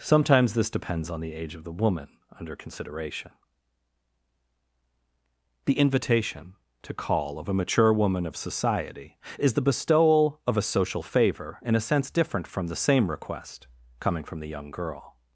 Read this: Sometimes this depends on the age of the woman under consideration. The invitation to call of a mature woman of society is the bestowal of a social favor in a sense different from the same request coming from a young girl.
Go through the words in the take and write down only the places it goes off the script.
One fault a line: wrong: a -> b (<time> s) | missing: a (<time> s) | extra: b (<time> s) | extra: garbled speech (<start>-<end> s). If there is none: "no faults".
wrong: a -> the (14.4 s)